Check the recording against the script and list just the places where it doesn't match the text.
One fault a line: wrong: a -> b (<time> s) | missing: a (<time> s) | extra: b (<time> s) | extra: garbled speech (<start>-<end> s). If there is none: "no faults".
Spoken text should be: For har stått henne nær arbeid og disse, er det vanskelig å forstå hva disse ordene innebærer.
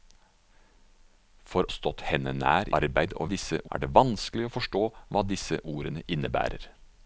no faults